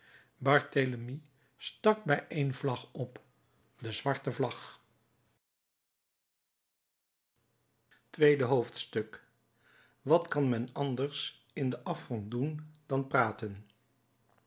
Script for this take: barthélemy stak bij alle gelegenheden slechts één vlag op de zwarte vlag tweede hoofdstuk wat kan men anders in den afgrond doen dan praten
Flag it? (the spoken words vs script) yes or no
yes